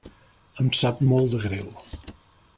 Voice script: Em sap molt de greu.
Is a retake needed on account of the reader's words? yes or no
no